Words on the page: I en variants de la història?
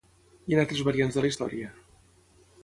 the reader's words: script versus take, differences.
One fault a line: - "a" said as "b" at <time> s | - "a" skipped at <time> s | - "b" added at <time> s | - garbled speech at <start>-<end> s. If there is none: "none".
- "altres" added at 0.6 s